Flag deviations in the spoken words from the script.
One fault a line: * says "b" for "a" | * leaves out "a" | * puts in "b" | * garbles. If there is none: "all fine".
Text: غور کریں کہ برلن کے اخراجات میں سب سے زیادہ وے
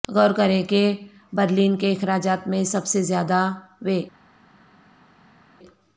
all fine